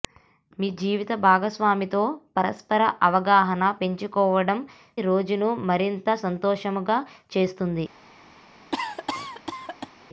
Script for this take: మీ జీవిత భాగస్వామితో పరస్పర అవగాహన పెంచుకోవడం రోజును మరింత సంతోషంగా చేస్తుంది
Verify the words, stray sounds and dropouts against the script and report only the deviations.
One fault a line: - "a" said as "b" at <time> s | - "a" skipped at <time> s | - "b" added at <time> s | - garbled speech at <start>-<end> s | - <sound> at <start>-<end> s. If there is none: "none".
- cough at 8.7-9.9 s